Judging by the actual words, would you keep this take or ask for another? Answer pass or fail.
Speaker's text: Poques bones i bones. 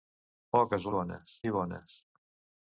pass